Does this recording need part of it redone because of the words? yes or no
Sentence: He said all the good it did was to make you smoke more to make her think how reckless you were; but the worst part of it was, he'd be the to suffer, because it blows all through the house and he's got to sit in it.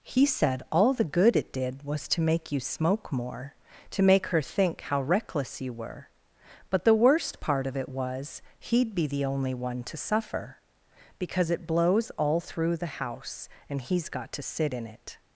yes